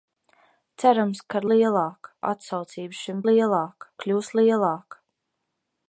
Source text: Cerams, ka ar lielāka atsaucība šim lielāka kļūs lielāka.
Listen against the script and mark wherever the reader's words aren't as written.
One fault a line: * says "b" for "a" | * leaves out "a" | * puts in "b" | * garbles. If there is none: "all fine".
all fine